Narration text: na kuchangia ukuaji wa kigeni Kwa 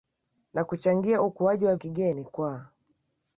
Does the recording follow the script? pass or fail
pass